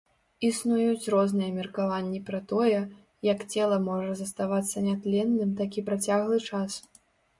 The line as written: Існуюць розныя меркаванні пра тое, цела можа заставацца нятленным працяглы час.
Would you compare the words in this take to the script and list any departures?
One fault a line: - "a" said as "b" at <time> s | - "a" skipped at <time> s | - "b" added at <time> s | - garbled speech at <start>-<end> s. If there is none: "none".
- "як" added at 3.3 s
- "такі" added at 5.6 s